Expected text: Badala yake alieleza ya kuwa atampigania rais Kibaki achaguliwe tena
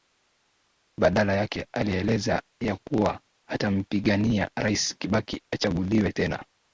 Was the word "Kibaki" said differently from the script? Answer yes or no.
no